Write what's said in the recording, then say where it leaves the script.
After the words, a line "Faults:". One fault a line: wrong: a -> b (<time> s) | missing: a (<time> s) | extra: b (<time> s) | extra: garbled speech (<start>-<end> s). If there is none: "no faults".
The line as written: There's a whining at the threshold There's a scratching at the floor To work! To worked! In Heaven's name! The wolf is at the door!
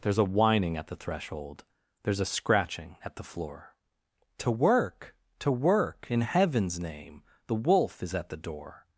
There's a whining at the threshold There's a scratching at the floor To work! To work! In Heaven's name! The wolf is at the door!
Faults:
wrong: worked -> work (5.5 s)